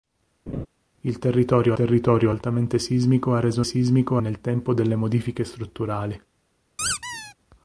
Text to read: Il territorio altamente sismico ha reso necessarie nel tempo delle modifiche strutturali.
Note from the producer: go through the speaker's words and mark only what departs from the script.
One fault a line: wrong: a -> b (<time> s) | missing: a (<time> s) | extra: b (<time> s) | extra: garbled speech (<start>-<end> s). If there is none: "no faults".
extra: territorio (1.7 s)
wrong: necessarie -> sismico (3.6 s)